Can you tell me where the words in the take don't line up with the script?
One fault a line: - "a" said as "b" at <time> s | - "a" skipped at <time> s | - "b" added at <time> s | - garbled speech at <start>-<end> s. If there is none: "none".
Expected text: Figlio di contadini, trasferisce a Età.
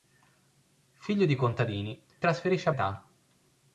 none